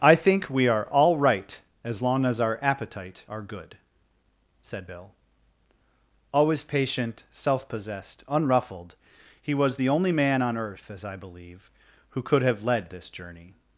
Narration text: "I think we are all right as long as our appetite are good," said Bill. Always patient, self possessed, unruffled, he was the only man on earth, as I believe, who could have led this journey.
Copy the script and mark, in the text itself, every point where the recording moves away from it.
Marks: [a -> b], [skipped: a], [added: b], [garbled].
"I think we are all right as long as our appetite are good," said Bill. Always patient, self possessed, unruffled, he was the only man on earth, as I believe, who could have led this journey.